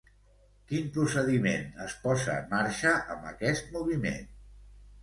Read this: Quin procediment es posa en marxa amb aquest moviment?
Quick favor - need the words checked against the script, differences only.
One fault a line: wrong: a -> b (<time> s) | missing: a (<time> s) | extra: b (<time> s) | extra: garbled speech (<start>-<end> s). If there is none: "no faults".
no faults